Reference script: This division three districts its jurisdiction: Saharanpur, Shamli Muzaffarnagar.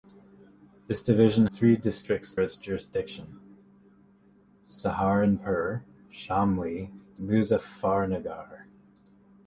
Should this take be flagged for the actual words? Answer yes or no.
no